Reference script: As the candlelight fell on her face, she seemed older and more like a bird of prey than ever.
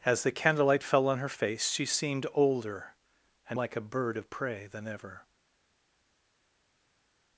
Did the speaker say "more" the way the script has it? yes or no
no